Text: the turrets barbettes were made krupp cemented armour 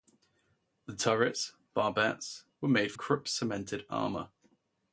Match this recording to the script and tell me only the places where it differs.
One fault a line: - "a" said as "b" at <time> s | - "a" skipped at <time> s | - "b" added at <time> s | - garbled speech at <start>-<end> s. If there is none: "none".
none